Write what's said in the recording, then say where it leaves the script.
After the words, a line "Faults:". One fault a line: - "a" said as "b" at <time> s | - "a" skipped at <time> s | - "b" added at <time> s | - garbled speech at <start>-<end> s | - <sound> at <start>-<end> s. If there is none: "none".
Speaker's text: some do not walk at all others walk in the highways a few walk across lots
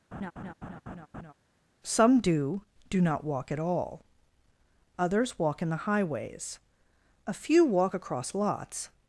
some do do not walk at all others walk in the highways a few walk across lots
Faults:
- laugh at 0.1-1.3 s
- "do" added at 2.9 s